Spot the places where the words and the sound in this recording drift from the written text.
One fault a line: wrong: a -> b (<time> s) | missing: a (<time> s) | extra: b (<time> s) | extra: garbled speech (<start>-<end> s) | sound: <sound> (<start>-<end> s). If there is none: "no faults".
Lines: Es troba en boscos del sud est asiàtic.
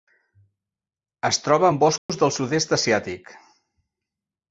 sound: dropout (2.0-2.1 s)